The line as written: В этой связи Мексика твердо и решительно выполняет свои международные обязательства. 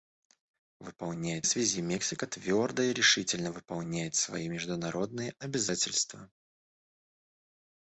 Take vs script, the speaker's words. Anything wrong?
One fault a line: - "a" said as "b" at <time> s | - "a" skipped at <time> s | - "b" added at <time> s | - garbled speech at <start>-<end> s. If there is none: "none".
- "этой" said as "выполняет" at 0.8 s